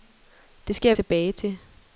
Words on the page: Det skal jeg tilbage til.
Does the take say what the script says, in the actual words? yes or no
yes